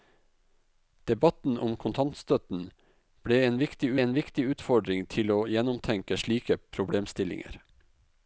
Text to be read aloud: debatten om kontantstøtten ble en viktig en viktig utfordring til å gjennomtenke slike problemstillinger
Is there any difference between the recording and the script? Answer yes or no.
no